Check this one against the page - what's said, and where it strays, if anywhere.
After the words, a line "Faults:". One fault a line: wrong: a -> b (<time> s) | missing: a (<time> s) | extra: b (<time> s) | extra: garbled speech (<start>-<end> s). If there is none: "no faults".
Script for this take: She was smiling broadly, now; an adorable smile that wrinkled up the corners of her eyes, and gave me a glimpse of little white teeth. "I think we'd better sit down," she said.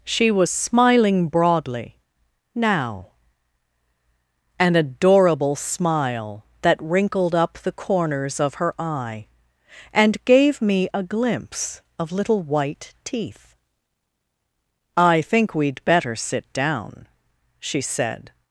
She was smiling broadly, now; an adorable smile that wrinkled up the corners of her eye, and gave me a glimpse of little white teeth. "I think we'd better sit down," she said.
Faults:
wrong: eyes -> eye (8.8 s)